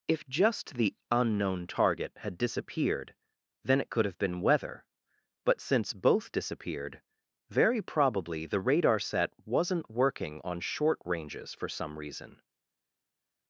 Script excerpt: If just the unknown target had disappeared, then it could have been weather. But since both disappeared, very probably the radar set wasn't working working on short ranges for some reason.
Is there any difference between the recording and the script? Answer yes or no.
yes